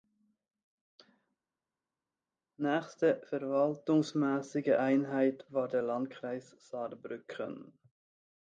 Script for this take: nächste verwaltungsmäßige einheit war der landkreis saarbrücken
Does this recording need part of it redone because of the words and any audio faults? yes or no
no